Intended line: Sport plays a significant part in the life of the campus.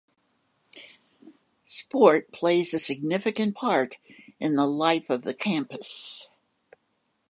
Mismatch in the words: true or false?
false